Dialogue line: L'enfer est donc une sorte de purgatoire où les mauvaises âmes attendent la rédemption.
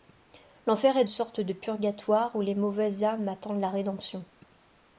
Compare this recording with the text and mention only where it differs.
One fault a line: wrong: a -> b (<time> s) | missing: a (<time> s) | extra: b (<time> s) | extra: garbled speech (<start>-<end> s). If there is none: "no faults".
missing: donc une (1.1 s)